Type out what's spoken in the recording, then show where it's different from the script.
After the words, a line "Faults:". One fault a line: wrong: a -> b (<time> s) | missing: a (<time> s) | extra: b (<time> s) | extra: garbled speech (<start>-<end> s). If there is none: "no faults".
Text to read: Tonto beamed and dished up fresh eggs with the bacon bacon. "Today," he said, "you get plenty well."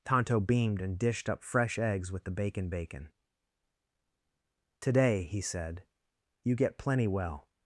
Tonto beamed and dished up fresh eggs with the bacon bacon. "Today," he said, "you get plenty well."
Faults:
no faults